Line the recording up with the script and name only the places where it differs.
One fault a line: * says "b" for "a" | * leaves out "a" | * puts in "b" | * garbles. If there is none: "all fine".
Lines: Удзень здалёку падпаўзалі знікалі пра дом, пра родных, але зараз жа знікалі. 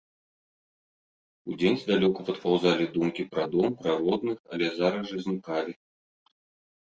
* says "думкі" for "знікалі"